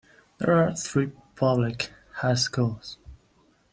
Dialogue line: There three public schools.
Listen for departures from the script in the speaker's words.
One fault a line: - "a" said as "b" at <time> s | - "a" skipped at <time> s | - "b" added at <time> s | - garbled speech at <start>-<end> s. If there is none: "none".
- "are" added at 0.6 s
- "high" added at 2.1 s